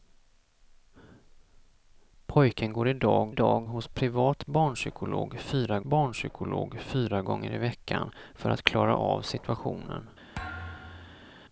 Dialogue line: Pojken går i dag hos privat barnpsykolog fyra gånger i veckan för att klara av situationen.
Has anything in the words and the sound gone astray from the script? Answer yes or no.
yes